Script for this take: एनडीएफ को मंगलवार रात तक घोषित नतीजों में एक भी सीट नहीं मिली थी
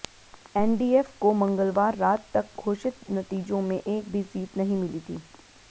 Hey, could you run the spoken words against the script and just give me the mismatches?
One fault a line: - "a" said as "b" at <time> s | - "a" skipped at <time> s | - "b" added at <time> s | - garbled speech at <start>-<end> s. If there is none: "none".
none